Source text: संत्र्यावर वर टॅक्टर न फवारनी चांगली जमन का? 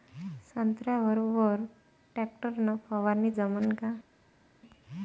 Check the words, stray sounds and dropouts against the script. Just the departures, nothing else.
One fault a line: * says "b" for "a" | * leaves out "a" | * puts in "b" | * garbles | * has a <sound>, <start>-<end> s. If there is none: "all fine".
* leaves out "चांगली"